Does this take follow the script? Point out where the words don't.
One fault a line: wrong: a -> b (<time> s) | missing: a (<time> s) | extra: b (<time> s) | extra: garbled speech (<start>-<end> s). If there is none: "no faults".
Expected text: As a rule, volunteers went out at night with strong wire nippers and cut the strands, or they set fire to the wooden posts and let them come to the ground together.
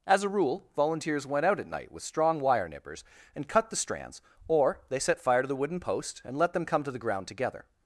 wrong: posts -> post (5.8 s)